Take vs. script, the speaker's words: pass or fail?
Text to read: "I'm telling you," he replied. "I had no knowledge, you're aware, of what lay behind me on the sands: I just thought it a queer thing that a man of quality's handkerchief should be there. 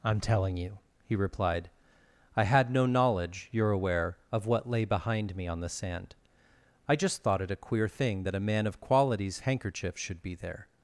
fail